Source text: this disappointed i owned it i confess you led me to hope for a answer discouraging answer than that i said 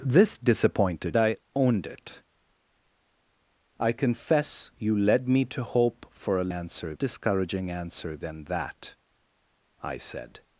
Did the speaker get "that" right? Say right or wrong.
right